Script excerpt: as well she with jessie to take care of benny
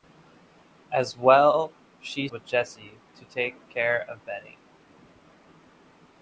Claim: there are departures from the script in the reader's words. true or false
false